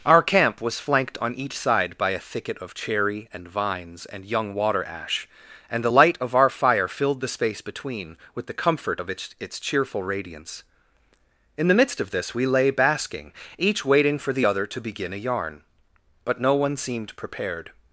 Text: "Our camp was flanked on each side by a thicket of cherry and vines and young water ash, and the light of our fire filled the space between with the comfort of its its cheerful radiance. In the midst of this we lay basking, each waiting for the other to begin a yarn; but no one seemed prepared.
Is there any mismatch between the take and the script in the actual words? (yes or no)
no